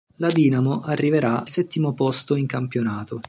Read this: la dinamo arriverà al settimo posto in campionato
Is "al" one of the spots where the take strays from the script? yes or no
yes